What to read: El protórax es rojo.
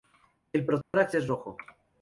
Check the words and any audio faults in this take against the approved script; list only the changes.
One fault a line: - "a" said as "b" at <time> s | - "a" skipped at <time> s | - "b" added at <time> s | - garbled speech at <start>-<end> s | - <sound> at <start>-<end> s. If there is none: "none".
- dropout at 0.8-0.9 s